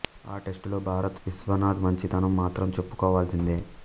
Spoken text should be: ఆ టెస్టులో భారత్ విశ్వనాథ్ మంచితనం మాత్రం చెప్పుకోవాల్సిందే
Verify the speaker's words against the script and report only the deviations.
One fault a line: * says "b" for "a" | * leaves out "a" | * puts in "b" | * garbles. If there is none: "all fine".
all fine